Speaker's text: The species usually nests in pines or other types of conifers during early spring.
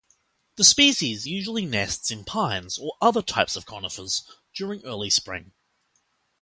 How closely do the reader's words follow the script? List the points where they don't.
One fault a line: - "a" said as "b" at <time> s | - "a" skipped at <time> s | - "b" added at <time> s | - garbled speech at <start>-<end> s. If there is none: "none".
none